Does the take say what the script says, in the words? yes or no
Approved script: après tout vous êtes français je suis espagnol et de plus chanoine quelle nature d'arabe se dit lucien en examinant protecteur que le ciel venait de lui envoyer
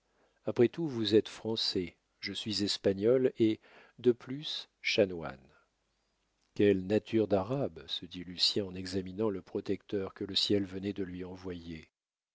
no